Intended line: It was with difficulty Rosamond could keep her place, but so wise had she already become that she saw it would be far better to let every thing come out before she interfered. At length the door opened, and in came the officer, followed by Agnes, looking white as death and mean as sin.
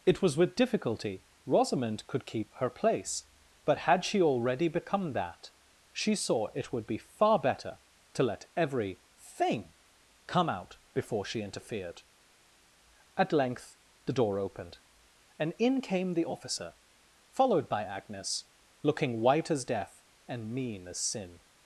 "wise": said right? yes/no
no